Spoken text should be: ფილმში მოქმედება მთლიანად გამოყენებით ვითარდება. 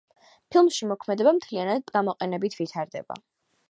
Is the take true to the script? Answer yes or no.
yes